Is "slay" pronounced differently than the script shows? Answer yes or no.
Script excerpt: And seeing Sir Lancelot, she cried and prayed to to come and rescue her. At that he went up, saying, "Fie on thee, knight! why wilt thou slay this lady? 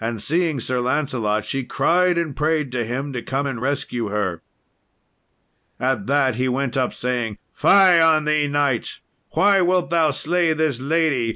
no